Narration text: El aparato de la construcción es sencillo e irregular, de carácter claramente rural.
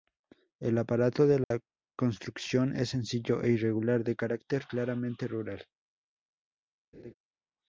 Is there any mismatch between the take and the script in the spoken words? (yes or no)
no